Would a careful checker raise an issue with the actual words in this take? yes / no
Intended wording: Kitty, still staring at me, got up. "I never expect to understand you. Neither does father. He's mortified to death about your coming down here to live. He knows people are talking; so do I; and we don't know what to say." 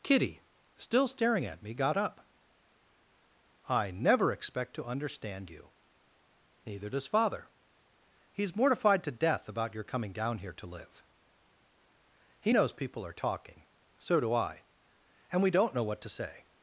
no